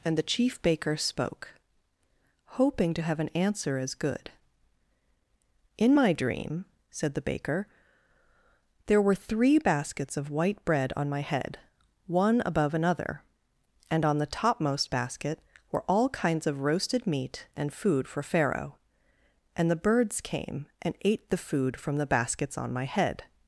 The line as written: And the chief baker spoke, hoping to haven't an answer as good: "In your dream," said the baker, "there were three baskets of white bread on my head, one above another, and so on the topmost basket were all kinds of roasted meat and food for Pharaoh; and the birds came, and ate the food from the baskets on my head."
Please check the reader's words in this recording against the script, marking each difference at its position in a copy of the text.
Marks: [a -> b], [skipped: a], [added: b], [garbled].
And the chief baker spoke, hoping to [haven't -> have] an answer as good: "In [your -> my] dream," said the baker, "there were three baskets of white bread on my head, one above another, and [skipped: so] on the topmost basket were all kinds of roasted meat and food for Pharaoh; and the birds came, and ate the food from the baskets on my head."